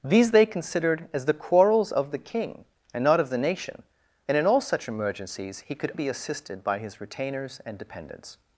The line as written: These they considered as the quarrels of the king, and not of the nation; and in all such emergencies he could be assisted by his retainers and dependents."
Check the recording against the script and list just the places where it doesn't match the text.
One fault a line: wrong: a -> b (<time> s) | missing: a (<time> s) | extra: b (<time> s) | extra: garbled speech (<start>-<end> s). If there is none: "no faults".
no faults